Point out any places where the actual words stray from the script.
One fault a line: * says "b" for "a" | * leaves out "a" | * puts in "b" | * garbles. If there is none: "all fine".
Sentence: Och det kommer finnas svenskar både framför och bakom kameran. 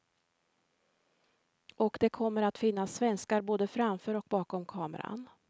* puts in "att"